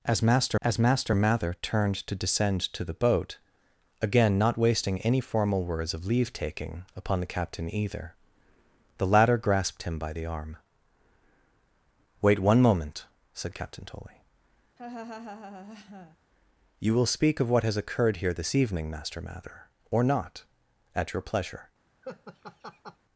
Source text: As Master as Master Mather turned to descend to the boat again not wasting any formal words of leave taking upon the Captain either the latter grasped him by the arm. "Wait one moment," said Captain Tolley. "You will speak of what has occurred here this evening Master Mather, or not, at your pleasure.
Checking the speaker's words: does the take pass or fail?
pass